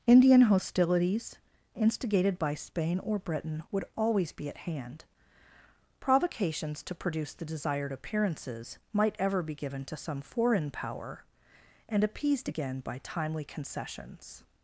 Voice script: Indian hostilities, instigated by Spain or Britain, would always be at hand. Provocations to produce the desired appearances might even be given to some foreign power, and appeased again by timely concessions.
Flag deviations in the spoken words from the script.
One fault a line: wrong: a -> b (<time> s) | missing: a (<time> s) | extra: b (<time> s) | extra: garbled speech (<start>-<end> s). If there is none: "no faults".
wrong: even -> ever (9.2 s)